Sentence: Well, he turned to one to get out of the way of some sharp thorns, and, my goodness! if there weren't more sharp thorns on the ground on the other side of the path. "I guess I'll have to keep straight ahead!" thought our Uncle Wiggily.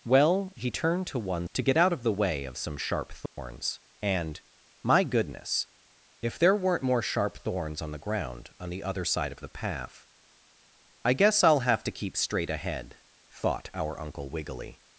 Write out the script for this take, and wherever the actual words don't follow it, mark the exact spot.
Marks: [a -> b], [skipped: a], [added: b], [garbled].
Well, he turned to one to get out of the way of some sharp thorns, and, my goodness! if there weren't more sharp thorns on the ground on the other side of the path. "I guess I'll have to keep straight ahead!" thought our Uncle Wiggily.